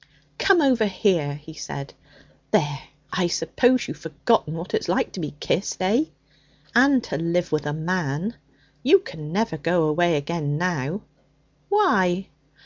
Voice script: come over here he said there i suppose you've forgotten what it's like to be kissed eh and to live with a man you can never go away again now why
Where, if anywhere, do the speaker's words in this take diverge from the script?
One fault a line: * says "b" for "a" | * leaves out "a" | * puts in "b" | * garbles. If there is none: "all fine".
all fine